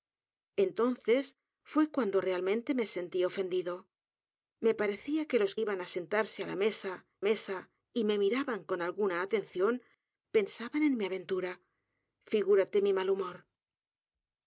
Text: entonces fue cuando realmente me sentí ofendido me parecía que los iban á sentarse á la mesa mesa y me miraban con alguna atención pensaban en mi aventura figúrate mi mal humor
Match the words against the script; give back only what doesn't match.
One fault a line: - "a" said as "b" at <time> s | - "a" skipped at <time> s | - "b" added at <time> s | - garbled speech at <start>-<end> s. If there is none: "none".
none